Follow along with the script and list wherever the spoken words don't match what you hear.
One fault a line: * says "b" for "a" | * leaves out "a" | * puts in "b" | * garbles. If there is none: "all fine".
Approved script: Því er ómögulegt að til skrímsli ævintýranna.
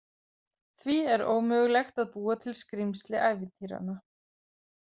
* puts in "búa"